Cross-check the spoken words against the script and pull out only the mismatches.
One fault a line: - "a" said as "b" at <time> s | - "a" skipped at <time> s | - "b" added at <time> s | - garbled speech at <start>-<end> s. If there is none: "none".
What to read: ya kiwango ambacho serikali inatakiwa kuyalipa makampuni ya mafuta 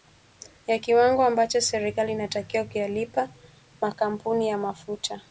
none